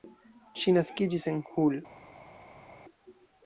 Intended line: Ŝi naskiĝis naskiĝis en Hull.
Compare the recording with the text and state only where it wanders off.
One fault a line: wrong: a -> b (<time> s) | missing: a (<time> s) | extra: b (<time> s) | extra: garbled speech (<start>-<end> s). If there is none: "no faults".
missing: naskiĝis (1.2 s)